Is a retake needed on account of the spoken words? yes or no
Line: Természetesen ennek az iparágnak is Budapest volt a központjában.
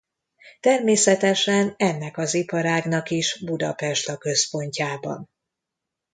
yes